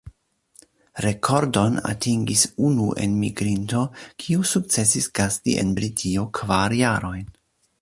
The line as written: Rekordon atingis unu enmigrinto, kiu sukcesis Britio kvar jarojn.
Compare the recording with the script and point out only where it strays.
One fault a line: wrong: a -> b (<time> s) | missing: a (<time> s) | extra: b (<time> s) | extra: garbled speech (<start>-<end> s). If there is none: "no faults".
extra: gasti en (5.2 s)